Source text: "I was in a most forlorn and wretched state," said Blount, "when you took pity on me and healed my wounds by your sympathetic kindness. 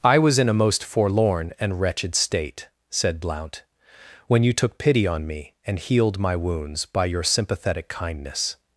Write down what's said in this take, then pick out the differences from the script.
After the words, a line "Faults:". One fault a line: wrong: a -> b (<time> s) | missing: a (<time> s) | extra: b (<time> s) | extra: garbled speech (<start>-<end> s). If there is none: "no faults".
"I was in a most forlorn and wretched state," said Blount, "when you took pity on me and healed my wounds by your sympathetic kindness.
Faults:
no faults